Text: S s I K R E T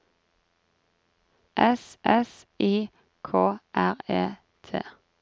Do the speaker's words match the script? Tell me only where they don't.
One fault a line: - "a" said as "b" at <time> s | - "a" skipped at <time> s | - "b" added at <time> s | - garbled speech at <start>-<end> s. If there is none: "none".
none